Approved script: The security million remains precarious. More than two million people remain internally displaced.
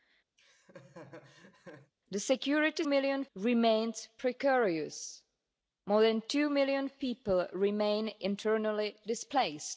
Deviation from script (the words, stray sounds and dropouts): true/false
true